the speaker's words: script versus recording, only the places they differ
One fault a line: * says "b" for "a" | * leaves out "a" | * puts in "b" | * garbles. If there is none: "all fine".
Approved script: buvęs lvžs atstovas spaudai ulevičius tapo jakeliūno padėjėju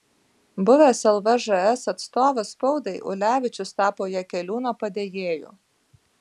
all fine